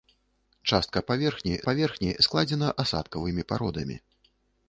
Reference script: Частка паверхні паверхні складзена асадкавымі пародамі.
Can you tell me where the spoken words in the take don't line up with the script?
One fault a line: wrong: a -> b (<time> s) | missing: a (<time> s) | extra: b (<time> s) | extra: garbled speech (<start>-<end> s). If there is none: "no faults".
no faults